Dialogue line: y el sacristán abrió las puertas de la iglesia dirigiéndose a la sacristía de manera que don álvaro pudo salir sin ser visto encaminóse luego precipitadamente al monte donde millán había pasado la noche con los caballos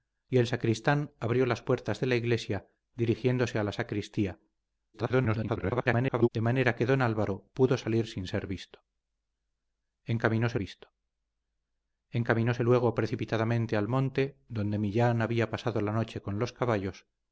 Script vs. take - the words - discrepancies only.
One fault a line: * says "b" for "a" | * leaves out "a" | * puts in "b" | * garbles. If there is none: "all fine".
* garbles
* puts in "visto encaminóse"